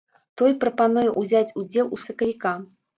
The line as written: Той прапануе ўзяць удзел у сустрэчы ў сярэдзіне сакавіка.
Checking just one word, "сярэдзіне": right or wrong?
wrong